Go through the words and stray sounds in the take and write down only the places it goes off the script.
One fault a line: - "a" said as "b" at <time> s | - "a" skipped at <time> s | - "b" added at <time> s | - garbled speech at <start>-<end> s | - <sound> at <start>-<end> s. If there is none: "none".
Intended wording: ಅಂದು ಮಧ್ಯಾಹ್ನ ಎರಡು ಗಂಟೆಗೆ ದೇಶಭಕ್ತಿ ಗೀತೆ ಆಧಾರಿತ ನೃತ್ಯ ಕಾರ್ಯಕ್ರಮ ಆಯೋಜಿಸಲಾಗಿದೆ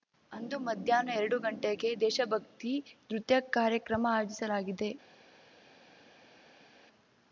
- "ಗೀತೆ ಆಧಾರಿತ" skipped at 2.7 s